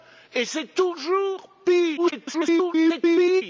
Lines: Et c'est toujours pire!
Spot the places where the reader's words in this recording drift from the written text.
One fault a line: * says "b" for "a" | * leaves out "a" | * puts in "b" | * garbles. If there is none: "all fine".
* garbles